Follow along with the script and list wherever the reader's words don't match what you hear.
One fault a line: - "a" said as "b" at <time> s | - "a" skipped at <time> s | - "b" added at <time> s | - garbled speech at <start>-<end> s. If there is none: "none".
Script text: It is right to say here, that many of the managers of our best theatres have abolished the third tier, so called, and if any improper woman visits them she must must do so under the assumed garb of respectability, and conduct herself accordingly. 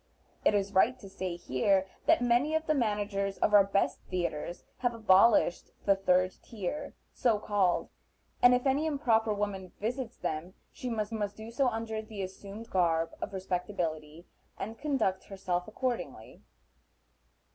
none